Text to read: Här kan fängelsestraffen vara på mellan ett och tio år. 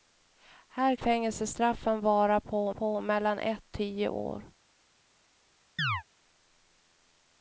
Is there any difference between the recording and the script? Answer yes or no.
yes